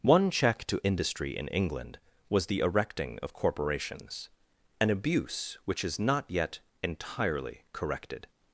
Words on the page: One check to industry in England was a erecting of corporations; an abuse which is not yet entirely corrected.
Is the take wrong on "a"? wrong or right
wrong